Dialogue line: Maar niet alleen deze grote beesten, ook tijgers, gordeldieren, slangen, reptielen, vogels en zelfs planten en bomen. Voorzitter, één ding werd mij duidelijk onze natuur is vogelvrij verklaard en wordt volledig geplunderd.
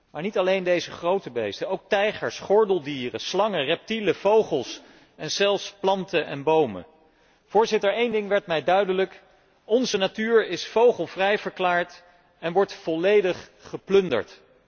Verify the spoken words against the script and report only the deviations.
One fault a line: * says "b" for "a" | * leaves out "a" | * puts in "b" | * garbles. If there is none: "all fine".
all fine